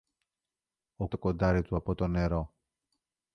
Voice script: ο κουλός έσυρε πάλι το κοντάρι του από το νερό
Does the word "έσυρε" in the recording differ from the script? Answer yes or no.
yes